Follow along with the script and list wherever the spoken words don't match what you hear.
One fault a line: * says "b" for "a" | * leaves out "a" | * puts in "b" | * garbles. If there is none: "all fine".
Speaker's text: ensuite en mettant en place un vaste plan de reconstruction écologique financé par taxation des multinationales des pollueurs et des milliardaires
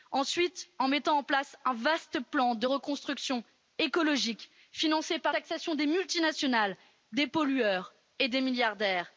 all fine